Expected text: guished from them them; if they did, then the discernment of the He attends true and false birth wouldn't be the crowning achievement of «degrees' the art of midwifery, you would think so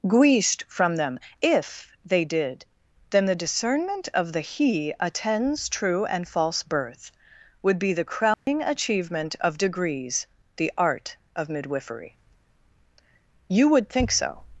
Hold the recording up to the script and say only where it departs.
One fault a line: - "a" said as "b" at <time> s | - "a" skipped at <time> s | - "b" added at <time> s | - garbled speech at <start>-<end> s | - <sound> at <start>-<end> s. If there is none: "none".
- "them" skipped at 1.2 s
- "wouldn't" said as "would" at 7.6 s
- dropout at 8.3-8.5 s